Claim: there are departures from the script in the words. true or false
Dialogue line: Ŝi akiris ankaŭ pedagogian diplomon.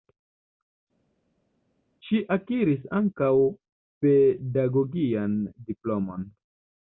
false